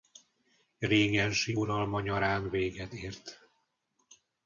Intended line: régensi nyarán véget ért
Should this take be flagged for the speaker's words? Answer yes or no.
yes